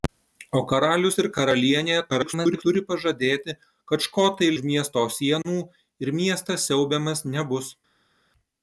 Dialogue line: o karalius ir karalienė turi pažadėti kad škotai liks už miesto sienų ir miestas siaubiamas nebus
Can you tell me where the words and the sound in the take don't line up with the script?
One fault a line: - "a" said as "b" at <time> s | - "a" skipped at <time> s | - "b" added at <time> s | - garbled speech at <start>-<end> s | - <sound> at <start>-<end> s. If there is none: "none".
- garbled speech at 2.1-2.6 s
- "liks" skipped at 4.5 s